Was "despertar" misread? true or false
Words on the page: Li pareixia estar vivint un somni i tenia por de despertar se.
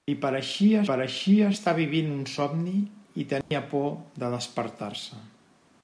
false